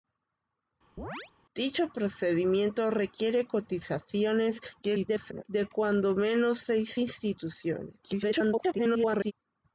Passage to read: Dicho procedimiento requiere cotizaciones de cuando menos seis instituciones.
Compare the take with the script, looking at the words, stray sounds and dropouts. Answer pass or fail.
fail